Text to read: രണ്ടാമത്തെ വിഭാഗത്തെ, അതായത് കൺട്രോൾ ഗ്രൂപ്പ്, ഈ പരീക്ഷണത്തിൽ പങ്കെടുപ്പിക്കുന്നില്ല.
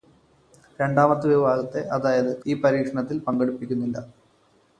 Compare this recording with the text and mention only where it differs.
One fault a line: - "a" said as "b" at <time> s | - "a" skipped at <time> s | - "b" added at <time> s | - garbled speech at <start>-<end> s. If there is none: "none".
- "കൺട്രോൾ ഗ്രൂപ്പ്" skipped at 2.4 s